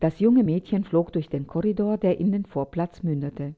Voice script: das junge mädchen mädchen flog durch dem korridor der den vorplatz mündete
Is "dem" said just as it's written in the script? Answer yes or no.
no